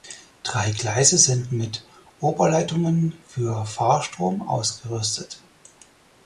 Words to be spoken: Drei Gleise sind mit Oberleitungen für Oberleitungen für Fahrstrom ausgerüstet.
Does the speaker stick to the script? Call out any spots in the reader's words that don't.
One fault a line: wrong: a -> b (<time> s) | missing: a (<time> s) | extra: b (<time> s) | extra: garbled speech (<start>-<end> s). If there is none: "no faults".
missing: Oberleitungen für (3.7 s)